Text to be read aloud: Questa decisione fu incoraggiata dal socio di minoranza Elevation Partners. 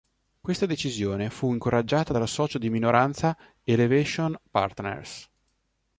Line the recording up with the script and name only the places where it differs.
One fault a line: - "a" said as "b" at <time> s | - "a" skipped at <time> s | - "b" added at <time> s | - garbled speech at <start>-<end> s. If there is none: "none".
none